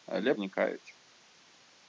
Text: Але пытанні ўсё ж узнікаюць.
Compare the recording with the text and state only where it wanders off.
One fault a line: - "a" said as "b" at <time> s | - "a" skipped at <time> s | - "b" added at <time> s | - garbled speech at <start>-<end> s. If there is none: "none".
- "пытанні ўсё ж" skipped at 0.3 s